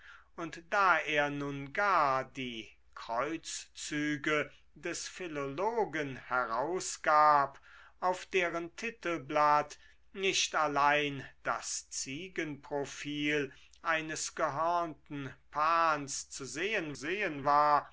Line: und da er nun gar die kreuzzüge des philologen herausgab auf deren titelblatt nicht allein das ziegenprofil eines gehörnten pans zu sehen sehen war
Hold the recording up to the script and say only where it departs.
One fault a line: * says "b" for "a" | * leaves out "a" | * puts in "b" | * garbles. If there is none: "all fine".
all fine